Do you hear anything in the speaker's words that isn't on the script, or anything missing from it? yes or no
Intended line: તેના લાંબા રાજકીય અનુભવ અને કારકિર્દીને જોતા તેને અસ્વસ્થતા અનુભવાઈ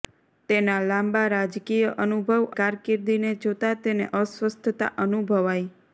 yes